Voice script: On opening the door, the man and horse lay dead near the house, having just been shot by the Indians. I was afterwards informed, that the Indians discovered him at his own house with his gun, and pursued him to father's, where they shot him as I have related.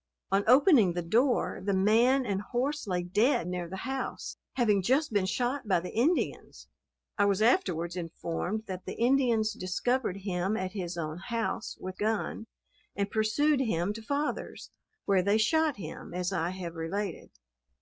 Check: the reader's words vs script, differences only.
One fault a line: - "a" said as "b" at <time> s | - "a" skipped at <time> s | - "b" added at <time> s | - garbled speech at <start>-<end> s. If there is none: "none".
- "his" skipped at 12.0 s